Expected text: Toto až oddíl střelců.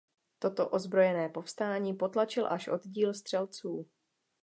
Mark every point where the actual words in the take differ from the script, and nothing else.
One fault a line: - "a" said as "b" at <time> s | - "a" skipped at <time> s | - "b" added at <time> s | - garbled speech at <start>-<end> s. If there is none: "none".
- "ozbrojené povstání potlačil" added at 0.7 s